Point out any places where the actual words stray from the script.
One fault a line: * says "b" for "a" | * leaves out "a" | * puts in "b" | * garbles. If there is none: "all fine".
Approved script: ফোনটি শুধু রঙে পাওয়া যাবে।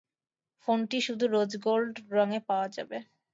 * puts in "রোজ গোল্ড"